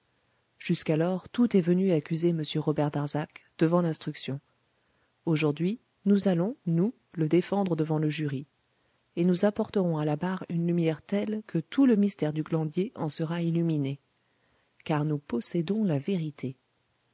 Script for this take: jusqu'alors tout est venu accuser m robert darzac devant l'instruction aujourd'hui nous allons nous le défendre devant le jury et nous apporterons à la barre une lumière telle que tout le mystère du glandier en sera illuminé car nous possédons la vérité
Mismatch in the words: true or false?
false